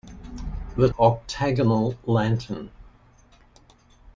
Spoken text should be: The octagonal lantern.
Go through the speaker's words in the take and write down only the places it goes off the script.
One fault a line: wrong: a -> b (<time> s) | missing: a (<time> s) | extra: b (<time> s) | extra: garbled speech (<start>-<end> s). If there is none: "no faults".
no faults